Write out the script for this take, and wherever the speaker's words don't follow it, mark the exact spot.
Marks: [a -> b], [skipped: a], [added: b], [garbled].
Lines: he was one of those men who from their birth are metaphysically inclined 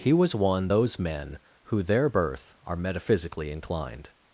he was one [skipped: of] those men who [skipped: from] their birth are metaphysically inclined